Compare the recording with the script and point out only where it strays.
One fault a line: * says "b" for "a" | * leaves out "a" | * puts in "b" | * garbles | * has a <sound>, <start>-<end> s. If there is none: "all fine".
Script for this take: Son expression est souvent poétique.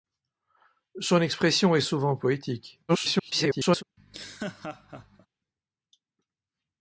* garbles
* has a laugh, 4.0-5.3 s